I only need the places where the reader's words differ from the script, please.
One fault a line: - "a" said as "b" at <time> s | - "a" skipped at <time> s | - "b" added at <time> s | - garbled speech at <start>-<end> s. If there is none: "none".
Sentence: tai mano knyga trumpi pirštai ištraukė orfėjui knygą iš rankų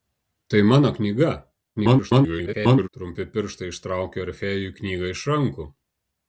- garbled speech at 1.8-2.9 s